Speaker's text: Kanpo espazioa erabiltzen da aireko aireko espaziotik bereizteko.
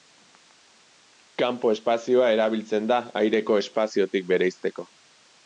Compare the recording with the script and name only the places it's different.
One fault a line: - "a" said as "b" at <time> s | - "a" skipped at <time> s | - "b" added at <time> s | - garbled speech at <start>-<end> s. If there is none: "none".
- "aireko" skipped at 3.6 s